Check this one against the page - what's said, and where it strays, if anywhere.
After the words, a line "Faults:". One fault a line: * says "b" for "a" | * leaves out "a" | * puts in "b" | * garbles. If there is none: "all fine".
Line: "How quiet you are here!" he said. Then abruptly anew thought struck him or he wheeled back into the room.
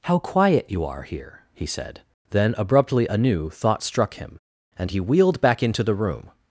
"How quiet you are here!" he said. Then abruptly anew thought struck him and he wheeled back into the room.
Faults:
* says "and" for "or"